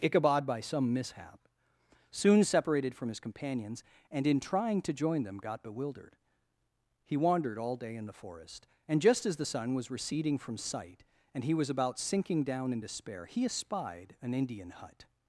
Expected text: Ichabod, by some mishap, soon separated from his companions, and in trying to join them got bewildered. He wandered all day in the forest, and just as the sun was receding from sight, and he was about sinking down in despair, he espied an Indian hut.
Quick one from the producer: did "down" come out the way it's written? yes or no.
yes